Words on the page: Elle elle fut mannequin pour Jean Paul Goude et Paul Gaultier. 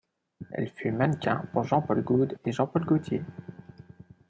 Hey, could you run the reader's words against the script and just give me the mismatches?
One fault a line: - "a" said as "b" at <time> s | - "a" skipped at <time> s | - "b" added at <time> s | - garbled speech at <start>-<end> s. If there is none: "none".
- "elle" skipped at 0.7 s
- "Jean" added at 2.5 s